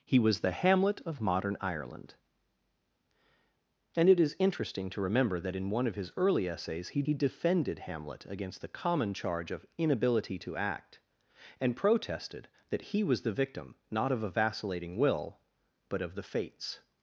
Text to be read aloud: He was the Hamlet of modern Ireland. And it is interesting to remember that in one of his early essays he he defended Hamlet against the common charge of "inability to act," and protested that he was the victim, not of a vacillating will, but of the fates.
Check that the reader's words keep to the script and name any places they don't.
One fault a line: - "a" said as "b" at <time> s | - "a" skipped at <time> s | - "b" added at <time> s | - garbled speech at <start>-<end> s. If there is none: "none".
none